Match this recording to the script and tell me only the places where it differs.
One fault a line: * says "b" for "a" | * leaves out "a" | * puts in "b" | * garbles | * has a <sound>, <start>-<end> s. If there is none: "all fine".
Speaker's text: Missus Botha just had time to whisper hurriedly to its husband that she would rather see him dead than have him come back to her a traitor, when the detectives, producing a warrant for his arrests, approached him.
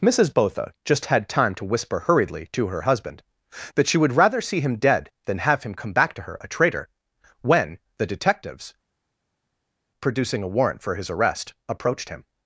* says "her" for "its"
* says "arrest" for "arrests"